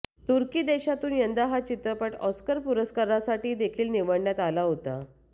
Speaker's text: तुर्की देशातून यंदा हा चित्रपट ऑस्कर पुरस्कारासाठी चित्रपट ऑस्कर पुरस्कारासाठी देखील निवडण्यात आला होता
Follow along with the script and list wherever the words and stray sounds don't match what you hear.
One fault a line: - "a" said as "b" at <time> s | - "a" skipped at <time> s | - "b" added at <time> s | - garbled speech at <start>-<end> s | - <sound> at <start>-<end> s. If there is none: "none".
- "चित्रपट ऑस्कर पुरस्कारासाठी" skipped at 3.5 s